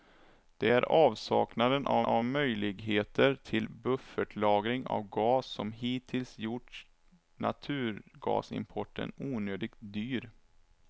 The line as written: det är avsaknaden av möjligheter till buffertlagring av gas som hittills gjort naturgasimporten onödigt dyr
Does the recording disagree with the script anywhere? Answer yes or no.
yes